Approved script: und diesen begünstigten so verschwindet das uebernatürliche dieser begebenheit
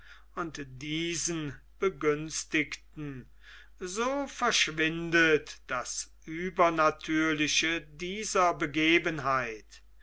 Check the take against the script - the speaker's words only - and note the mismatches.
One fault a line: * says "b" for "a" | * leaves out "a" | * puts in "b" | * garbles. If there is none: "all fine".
all fine